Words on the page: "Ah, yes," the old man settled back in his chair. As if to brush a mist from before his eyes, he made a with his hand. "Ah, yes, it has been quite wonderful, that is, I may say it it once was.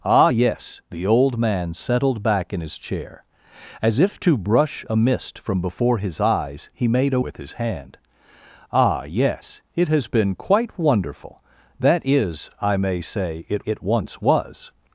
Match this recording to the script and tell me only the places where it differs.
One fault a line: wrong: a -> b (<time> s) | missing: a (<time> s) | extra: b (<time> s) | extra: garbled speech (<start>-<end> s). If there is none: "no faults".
no faults